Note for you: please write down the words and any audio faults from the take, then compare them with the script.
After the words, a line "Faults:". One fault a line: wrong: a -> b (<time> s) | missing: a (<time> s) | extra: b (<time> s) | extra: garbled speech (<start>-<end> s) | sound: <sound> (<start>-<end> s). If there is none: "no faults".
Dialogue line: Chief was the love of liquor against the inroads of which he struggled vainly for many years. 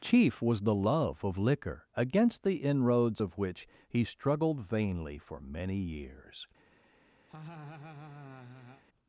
Chief was the love of liquor against the inroads of which he struggled vainly for many years.
Faults:
sound: laugh (7.3-8.8 s)